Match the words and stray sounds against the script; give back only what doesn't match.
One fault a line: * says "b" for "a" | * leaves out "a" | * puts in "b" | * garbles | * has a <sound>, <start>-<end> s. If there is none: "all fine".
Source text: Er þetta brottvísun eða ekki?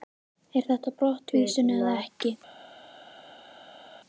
all fine